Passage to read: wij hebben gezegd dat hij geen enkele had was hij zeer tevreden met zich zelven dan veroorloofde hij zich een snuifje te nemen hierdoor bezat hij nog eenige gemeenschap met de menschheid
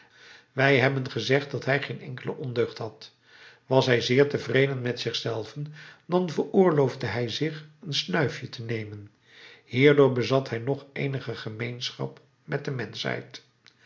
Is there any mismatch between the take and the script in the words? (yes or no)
yes